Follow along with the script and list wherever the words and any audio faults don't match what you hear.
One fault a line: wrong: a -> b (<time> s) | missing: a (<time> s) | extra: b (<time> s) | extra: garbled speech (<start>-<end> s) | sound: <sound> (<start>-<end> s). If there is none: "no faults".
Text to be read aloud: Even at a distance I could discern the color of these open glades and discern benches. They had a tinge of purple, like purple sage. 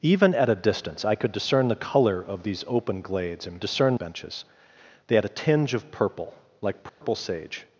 sound: dropout (6.9-7.0 s)